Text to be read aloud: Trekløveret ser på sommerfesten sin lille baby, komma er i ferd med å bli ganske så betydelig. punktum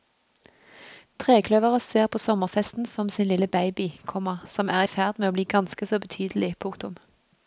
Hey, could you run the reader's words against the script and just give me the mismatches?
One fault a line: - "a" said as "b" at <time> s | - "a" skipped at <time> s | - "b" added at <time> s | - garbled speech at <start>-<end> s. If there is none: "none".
- "som" added at 2.9 s
- "som" added at 4.5 s